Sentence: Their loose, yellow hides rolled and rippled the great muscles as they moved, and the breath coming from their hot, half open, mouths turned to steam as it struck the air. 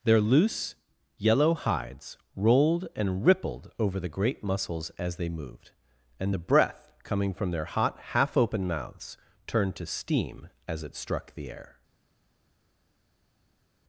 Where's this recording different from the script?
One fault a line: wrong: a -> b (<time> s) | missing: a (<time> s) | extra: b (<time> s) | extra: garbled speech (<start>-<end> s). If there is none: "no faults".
extra: over (3.8 s)